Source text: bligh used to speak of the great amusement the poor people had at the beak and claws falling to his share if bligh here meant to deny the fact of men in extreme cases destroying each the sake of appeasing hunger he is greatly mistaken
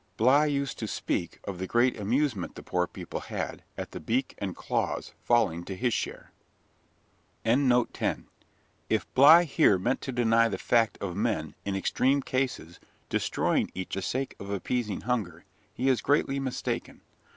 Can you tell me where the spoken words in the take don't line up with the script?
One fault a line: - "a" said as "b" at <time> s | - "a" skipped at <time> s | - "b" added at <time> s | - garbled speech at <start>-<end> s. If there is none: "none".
none